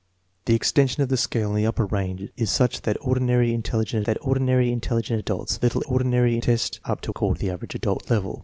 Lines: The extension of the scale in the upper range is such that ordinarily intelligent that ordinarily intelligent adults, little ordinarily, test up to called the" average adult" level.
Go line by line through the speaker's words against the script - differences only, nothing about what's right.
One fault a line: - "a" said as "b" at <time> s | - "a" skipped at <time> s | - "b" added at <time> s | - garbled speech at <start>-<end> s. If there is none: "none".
none